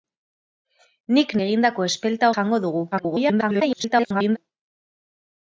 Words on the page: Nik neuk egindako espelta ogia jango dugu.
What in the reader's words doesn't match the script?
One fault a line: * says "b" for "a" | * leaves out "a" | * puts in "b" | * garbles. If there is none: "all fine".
* leaves out "neuk"
* leaves out "ogia"
* garbles